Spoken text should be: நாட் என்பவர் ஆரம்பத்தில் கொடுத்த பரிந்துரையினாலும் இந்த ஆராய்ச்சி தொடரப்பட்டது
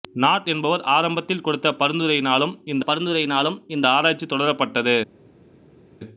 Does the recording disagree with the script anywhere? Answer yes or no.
yes